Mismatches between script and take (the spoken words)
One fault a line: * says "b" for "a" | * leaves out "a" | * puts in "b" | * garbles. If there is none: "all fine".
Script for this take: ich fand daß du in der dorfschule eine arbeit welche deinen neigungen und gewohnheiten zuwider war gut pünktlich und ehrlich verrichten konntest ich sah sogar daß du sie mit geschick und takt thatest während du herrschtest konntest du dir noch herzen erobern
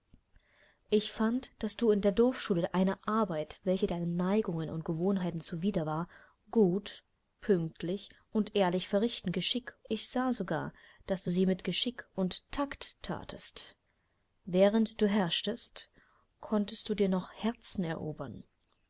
* says "geschick" for "konntest"